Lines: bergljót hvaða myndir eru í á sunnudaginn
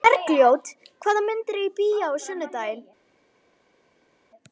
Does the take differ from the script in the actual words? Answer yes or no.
yes